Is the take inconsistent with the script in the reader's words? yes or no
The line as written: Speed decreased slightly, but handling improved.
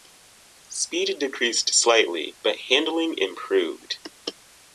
no